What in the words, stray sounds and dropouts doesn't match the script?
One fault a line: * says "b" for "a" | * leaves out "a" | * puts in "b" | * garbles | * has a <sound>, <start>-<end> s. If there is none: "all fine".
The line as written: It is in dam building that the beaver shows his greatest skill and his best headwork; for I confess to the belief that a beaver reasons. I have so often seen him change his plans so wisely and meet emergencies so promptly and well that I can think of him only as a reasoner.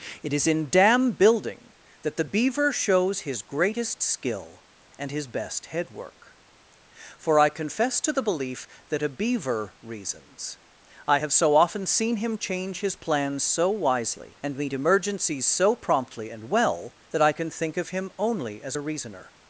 all fine